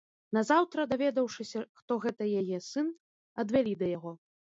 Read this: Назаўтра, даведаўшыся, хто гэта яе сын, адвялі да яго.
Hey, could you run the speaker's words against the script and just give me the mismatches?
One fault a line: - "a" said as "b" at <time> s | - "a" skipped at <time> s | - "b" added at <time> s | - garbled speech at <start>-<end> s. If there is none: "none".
none